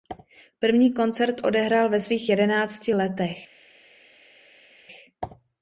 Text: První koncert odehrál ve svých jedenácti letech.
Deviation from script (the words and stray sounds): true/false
false